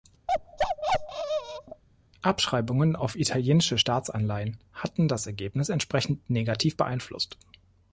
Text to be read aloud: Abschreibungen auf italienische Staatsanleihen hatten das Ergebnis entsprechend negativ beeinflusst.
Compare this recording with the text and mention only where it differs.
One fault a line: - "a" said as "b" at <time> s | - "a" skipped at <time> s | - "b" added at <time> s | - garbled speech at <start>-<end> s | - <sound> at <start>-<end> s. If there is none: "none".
- bark at 0.3-1.8 s